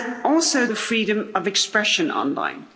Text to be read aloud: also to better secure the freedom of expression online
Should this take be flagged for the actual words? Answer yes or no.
yes